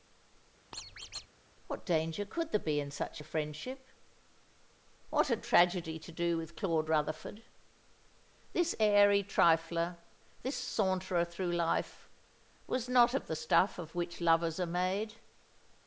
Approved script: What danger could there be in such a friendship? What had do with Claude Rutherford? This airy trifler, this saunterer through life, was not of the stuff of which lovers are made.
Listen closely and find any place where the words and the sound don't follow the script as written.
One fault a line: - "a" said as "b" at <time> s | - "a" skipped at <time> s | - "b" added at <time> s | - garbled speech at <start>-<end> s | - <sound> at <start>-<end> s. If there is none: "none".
- squeak at 0.7-1.3 s
- "tragedy to" added at 5.4 s